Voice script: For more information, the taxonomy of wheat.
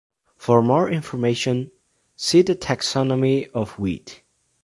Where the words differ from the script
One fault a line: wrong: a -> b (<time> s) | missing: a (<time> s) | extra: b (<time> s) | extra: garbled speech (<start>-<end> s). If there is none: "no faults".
extra: see (2.2 s)